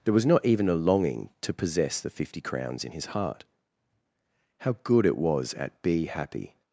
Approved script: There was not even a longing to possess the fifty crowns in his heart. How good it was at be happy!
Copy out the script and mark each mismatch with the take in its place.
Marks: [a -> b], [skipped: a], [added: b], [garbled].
There was not even a longing to possess the fifty crowns in his heart. How good it was at be happy!